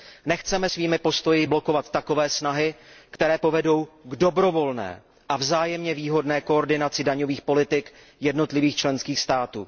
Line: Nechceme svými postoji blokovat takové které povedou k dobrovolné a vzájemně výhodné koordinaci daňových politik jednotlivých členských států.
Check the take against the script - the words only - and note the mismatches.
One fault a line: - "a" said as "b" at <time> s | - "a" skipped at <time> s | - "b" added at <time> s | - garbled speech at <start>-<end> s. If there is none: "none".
- "snahy" added at 2.3 s